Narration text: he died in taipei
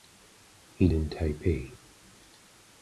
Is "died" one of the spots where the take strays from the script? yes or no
yes